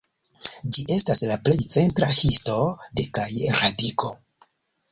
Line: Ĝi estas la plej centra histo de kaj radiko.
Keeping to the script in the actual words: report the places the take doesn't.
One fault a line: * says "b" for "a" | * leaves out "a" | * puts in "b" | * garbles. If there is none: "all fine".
all fine